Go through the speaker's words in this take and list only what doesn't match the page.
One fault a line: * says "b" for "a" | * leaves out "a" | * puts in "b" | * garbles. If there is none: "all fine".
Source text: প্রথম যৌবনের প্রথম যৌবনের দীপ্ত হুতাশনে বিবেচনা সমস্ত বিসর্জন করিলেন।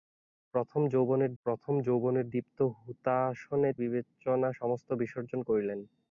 all fine